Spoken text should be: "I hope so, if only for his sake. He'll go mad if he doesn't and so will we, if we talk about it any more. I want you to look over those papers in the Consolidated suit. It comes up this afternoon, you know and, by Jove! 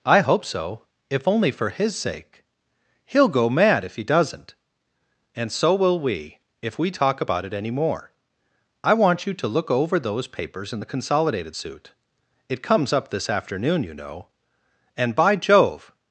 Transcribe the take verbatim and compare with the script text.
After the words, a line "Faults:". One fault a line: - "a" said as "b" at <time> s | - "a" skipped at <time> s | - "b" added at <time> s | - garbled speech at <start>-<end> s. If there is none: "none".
"I hope so, if only for his sake. He'll go mad if he doesn't and so will we, if we talk about it any more. I want you to look over those papers in the Consolidated suit. It comes up this afternoon, you know and, by Jove!
Faults:
none